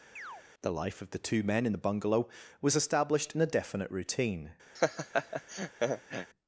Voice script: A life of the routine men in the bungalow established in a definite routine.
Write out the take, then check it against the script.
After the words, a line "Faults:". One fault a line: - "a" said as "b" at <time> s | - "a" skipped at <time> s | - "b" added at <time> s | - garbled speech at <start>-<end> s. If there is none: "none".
The life of the two men in the bungalow was established in a definite routine.
Faults:
- "A" said as "The" at 0.6 s
- "routine" said as "two" at 1.2 s
- "was" added at 2.6 s